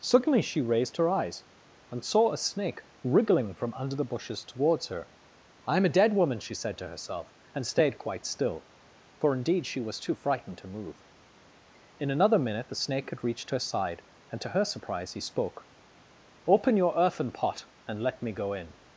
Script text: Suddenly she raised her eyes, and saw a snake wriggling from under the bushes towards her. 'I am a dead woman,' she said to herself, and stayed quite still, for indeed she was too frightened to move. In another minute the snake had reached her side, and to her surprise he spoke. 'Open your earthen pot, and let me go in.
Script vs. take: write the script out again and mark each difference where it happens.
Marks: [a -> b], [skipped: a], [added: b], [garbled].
Suddenly she raised her eyes, and saw a snake wriggling from under the bushes towards her. 'I am a dead woman,' she said to herself, and stayed quite still, for indeed she was too frightened to move. In another minute the snake had reached her side, and to her surprise he spoke. 'Open your earthen pot, and let me go in.